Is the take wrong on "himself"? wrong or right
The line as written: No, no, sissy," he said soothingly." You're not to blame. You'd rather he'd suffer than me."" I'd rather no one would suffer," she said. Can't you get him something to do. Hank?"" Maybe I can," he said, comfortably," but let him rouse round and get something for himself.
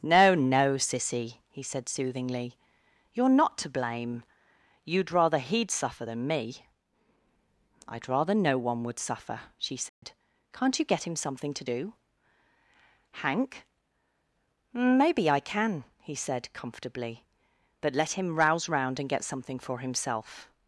right